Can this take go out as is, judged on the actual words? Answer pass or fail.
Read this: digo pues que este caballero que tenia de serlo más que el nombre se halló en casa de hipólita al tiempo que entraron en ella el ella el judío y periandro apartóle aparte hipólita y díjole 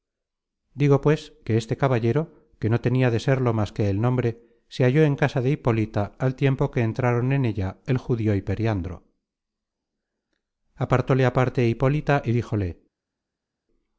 fail